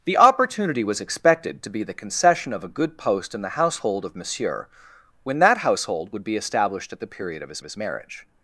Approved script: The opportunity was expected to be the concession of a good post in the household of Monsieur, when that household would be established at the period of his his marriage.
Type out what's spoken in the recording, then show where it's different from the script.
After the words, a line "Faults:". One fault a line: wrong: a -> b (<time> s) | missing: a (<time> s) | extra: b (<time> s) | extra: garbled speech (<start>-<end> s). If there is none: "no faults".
The opportunity was expected to be the concession of a good post in the household of Monsieur, when that household would be established at the period of his his marriage.
Faults:
no faults